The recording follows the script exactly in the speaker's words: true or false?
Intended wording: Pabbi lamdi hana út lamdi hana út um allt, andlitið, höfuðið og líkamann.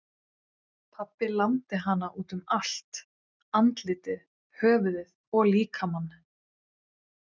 false